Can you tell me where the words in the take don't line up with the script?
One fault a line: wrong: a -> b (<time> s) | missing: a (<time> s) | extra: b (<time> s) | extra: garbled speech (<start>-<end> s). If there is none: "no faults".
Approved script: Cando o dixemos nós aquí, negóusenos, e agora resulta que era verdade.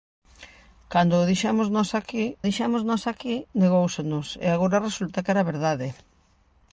extra: dixemos nós aquí (2.5 s)